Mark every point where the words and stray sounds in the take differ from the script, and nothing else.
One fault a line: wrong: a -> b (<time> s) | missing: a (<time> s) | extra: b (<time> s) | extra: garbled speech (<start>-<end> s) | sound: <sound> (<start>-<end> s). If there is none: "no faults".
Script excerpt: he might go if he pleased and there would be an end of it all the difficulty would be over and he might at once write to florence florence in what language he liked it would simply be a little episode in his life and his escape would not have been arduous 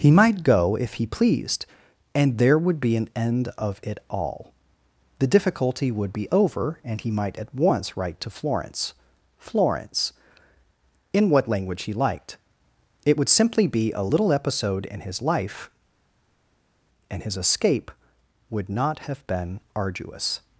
no faults